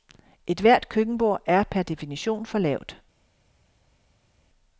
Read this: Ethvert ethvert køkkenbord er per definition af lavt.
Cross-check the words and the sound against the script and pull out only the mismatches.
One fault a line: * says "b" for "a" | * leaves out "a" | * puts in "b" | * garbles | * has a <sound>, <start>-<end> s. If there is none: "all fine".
* leaves out "ethvert"
* says "for" for "af"